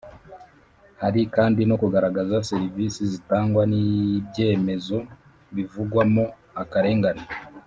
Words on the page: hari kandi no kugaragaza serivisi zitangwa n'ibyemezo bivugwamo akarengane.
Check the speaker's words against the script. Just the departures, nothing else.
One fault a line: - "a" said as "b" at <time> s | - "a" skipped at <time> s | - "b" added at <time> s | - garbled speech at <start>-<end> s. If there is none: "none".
none